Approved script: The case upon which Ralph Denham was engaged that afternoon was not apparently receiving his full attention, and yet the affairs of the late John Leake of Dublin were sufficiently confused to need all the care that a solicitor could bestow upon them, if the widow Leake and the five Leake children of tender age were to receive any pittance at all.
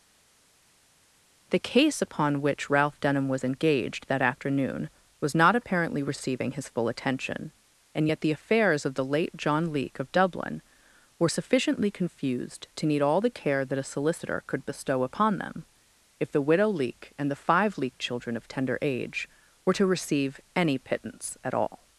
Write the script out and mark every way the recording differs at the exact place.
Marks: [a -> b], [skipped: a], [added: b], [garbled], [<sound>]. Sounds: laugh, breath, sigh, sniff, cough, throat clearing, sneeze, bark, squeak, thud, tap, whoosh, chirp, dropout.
The case upon which Ralph Denham was engaged that afternoon was not apparently receiving his full attention, and yet the affairs of the late John Leake of Dublin were sufficiently confused to need all the care that a solicitor could bestow upon them, if the widow Leake and the five Leake children of tender age were to receive any pittance at all.